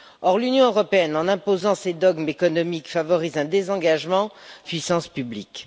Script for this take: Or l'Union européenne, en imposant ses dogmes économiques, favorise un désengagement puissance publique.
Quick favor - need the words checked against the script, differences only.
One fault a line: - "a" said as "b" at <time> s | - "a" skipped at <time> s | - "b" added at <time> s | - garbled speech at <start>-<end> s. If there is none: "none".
none